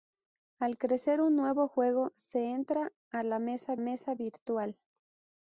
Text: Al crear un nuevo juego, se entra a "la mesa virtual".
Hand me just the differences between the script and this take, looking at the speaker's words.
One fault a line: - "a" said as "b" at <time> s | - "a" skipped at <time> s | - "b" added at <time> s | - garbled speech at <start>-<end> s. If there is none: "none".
- "mesa" added at 3.8 s